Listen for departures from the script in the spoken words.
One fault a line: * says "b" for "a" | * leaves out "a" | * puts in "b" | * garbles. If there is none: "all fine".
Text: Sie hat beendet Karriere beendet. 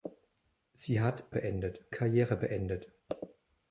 all fine